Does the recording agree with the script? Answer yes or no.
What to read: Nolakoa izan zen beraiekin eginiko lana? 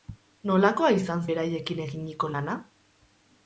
no